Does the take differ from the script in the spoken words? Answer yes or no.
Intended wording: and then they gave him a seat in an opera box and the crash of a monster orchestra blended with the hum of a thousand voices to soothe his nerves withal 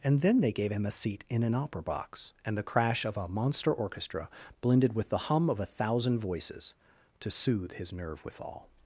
yes